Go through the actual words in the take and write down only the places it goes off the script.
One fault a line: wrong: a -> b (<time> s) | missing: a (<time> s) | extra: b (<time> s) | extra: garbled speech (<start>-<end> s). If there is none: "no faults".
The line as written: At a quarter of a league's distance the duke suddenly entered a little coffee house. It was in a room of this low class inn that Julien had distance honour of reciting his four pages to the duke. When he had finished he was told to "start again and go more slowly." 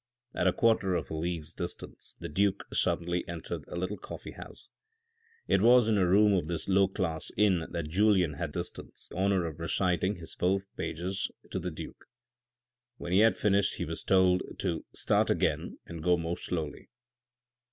no faults